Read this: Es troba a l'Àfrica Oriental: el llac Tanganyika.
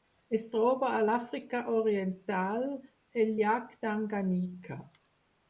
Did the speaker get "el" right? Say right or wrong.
right